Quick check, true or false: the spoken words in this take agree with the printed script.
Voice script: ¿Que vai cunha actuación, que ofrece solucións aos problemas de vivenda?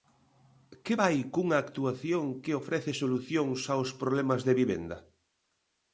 true